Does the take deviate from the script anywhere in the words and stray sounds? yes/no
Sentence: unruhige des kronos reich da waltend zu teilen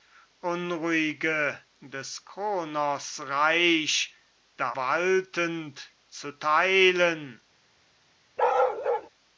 yes